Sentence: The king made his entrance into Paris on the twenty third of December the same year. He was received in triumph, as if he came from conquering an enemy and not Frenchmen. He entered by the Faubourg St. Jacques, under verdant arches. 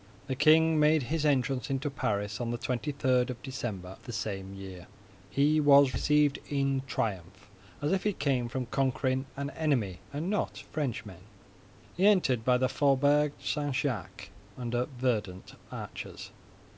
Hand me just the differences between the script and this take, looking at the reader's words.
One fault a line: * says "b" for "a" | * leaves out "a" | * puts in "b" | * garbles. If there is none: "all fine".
all fine